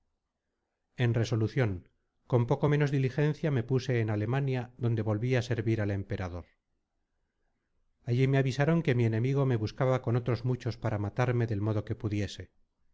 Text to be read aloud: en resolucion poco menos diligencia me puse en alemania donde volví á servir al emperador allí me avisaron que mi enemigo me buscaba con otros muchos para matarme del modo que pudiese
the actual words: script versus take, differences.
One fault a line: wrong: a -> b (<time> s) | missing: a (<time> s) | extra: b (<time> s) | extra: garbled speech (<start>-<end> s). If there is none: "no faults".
extra: con (2.2 s)